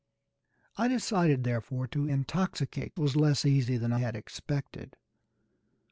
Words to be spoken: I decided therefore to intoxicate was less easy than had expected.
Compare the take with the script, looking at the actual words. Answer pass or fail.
pass